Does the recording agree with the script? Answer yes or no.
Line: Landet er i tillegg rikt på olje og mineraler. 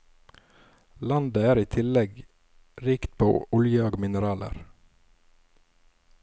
yes